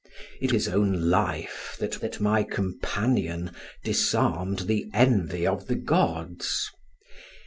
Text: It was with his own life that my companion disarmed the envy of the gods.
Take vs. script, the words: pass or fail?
fail